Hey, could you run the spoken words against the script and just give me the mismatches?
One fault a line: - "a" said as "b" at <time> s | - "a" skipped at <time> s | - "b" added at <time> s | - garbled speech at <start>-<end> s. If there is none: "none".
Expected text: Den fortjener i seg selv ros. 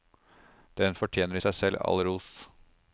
- "all" added at 1.9 s